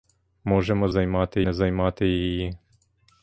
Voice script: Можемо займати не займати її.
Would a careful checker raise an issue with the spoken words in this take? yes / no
no